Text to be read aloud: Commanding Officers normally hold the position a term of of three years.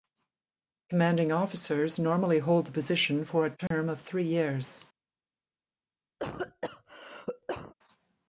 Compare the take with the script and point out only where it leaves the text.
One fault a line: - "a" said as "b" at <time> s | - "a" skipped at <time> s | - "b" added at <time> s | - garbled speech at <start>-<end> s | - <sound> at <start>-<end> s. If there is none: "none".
- "for" added at 3.2 s
- dropout at 3.7-3.7 s
- "of" skipped at 4.0 s
- cough at 6.2-7.7 s